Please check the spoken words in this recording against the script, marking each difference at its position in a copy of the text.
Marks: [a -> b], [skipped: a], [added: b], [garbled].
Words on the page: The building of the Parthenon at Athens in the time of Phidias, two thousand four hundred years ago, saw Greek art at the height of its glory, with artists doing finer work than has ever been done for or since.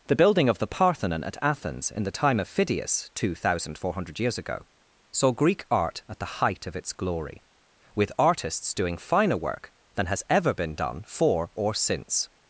The building of the Parthenon at Athens in the time of Phidias, two thousand four hundred years ago, saw Greek art at the height of its glory, with artists doing finer work than has ever been done for or since.